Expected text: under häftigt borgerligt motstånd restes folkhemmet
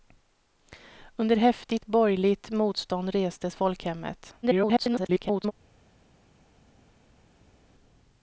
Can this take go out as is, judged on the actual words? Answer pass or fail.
fail